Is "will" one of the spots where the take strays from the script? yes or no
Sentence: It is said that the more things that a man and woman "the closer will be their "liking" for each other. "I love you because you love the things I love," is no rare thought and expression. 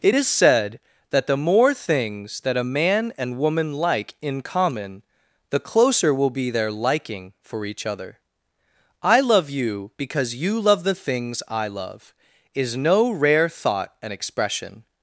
no